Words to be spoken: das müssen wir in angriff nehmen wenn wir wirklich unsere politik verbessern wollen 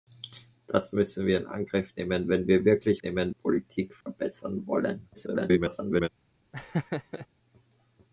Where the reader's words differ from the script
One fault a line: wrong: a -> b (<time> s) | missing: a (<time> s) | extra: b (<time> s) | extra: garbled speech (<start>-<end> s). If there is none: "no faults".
wrong: unsere -> nehmen (3.0 s)
extra: garbled speech (5.1-6.1 s)